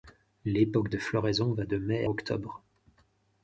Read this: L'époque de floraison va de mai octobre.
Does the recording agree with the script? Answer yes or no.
yes